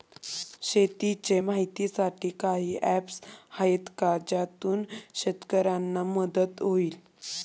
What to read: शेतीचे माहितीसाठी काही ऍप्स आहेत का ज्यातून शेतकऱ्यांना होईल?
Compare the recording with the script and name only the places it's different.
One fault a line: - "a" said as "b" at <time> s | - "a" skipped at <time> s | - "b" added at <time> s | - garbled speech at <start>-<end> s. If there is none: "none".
- "मदत" added at 6.1 s